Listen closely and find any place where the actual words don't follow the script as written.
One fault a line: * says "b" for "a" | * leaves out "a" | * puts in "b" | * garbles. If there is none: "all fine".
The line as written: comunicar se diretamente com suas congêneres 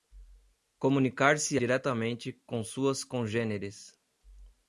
all fine